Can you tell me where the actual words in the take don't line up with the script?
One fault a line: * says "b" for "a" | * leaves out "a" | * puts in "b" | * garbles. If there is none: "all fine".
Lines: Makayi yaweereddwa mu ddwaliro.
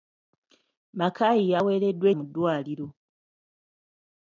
all fine